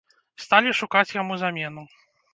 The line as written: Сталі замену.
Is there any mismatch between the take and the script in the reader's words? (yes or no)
yes